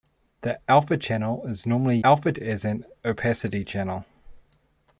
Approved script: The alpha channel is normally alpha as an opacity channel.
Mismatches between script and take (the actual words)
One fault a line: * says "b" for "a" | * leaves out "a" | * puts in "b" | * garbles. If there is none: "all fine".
all fine